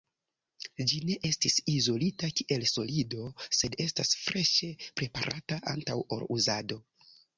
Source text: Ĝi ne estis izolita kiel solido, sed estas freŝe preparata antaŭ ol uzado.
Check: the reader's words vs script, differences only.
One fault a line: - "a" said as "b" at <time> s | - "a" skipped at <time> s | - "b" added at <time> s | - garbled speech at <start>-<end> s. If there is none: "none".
none